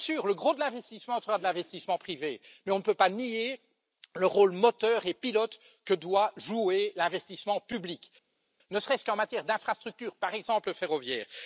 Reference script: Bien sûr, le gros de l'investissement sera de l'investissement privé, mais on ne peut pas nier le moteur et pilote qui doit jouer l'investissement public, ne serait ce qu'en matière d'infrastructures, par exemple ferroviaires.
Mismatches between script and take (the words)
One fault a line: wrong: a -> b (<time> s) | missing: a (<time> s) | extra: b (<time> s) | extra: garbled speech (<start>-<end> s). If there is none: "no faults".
extra: rôle (4.2 s)
wrong: qui -> que (5.8 s)